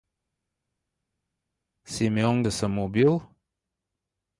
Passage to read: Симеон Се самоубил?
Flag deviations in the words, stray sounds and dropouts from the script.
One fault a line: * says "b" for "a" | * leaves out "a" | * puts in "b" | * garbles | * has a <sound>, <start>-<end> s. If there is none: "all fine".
all fine